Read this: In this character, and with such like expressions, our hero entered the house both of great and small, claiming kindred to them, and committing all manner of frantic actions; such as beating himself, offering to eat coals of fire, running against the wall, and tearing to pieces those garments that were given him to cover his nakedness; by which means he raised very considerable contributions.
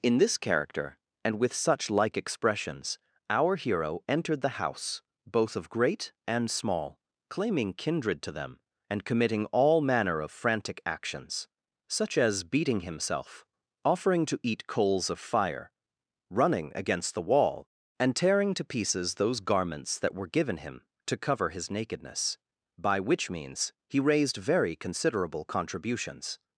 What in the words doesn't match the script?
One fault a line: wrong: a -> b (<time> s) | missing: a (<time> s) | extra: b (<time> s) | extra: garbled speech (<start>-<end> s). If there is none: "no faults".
no faults